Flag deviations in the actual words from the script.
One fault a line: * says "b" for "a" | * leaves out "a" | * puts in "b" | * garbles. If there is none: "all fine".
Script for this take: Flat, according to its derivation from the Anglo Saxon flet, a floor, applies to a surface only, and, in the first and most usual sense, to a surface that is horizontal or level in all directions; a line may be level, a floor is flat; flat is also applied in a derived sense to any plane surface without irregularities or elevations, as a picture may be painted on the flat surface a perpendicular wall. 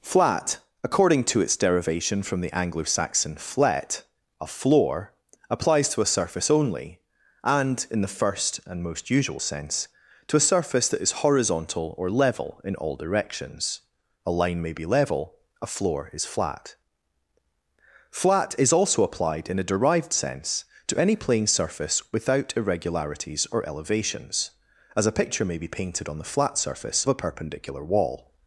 all fine